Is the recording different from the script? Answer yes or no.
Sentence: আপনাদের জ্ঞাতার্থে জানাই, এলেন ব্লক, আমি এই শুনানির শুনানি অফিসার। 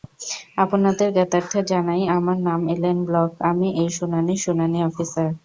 yes